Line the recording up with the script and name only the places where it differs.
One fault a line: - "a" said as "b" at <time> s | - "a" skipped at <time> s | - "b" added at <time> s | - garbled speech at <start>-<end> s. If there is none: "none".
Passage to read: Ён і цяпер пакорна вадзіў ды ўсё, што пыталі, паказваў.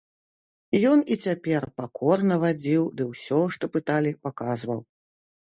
none